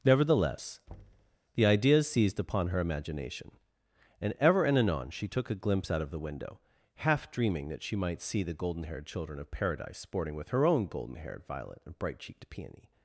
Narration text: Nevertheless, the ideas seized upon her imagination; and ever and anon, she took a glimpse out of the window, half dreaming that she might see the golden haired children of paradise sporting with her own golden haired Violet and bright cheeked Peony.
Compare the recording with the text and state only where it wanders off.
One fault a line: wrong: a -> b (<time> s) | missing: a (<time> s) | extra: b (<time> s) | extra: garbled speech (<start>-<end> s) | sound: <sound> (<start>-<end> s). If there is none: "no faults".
sound: thud (0.9-1.4 s)